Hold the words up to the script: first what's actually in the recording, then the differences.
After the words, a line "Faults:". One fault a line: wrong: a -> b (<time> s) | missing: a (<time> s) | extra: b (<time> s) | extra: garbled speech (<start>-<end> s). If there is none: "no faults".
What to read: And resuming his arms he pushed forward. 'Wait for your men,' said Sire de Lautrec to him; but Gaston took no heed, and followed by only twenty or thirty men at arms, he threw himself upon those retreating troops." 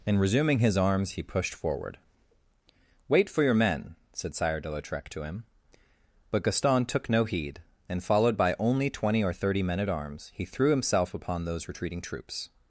And resuming his arms he pushed forward. 'Wait for your men,' said Sire de Lautrec to him; but Gaston took no heed, and followed by only twenty or thirty men at arms, he threw himself upon those retreating troops."
Faults:
no faults